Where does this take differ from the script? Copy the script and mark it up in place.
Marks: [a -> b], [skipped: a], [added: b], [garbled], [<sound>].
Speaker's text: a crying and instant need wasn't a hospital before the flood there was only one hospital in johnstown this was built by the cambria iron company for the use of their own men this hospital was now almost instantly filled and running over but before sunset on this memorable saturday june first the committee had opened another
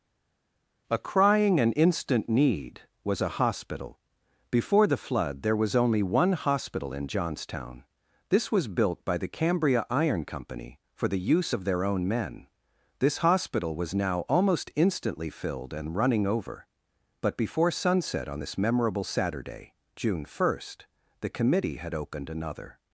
a crying and instant need [wasn't -> was] a hospital before the flood there was only one hospital in johnstown this was built by the cambria iron company for the use of their own men this hospital was now almost instantly filled and running over but before sunset on this memorable saturday june first the committee had opened another